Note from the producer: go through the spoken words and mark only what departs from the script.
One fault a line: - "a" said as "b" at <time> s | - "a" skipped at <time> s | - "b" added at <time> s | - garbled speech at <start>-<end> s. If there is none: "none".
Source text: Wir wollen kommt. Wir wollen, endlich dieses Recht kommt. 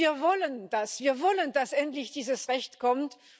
- "kommt" said as "das" at 0.7 s
- "dass" added at 1.5 s